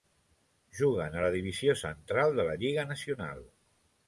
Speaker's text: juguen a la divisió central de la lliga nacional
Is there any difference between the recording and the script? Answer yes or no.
no